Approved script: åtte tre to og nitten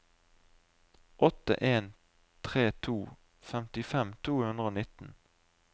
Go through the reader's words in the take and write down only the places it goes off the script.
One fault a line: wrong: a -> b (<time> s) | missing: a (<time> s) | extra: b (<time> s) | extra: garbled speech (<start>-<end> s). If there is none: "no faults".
extra: en (1.6 s)
extra: femtifem to hundre (3.5 s)